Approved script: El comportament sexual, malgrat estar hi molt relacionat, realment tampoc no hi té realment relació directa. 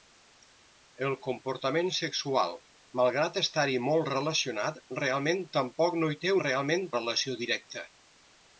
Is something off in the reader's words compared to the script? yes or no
no